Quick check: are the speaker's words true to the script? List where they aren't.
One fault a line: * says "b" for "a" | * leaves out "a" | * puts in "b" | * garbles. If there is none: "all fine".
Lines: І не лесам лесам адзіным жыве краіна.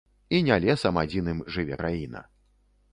* leaves out "лесам"